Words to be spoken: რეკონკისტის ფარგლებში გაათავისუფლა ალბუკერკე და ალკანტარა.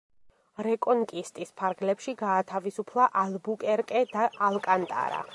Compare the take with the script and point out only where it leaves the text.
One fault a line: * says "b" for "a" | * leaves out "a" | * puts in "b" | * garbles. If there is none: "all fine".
all fine